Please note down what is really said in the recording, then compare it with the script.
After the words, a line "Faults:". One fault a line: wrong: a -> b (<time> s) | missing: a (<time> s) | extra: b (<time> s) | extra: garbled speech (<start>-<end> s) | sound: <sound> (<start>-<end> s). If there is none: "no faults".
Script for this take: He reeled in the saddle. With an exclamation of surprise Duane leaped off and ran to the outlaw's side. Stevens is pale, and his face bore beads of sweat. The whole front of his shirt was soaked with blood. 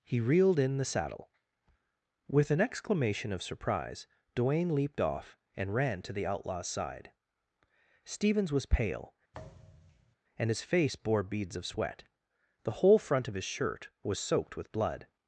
He reeled in the saddle. With an exclamation of surprise Duane leaped off and ran to the outlaw's side. Stevens was pale, and his face bore beads of sweat. The whole front of his shirt was soaked with blood.
Faults:
wrong: is -> was (8.5 s)
sound: thud (9.3-10.2 s)